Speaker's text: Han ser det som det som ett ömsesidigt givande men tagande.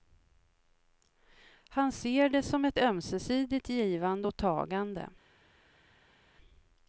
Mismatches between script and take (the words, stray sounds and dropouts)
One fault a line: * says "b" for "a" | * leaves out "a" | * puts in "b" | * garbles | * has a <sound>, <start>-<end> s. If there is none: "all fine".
* leaves out "det som"
* says "och" for "men"